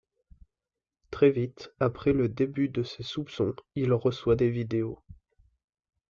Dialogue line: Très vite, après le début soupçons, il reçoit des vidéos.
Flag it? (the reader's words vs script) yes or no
yes